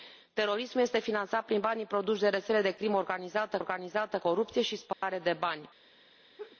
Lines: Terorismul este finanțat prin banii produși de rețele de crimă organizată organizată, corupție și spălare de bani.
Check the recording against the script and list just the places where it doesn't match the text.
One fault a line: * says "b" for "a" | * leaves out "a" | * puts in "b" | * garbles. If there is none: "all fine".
all fine